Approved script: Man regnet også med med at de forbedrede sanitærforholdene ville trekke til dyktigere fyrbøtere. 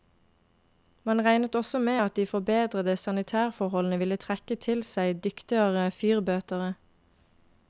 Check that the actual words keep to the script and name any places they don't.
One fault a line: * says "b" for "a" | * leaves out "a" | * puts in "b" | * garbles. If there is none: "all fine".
* leaves out "med"
* puts in "seg"